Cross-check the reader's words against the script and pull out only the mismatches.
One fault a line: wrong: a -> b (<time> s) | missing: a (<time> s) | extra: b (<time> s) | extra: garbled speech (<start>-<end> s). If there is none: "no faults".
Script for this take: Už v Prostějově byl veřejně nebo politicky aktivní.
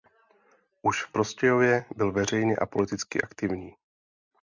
wrong: nebo -> a (2.6 s)